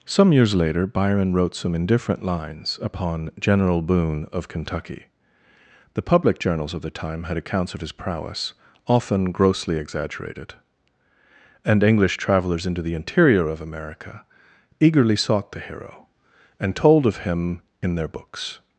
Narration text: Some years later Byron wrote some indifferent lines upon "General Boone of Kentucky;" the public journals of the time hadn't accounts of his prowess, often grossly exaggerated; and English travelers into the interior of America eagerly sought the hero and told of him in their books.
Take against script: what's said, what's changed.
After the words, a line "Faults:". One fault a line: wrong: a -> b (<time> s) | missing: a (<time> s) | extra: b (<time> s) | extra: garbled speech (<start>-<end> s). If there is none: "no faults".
Some years later Byron wrote some indifferent lines upon "General Boone of Kentucky;" the public journals of the time had accounts of his prowess, often grossly exaggerated; and English travelers into the interior of America eagerly sought the hero and told of him in their books.
Faults:
wrong: hadn't -> had (7.2 s)